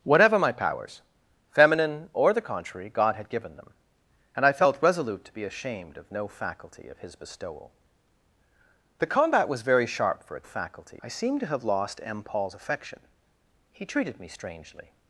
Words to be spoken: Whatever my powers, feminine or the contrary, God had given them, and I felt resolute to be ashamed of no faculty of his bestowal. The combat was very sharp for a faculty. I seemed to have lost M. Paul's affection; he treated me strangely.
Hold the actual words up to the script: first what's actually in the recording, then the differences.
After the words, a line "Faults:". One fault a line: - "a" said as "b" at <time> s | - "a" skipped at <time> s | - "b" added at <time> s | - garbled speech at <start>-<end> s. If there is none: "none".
Whatever my powers, feminine or the contrary, God had given them, and I felt resolute to be ashamed of no faculty of his bestowal. The combat was very sharp for a faculty. I seemed to have lost M. Paul's affection; he treated me strangely.
Faults:
none